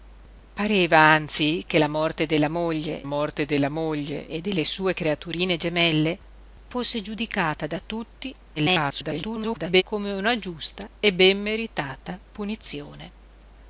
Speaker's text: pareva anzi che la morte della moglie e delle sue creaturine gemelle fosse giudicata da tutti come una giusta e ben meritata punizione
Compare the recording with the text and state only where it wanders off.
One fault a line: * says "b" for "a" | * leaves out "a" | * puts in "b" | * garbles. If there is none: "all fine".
* puts in "morte della moglie"
* garbles